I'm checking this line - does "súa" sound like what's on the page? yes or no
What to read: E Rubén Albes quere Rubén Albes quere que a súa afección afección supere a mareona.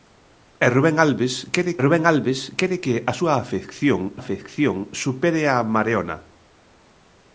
yes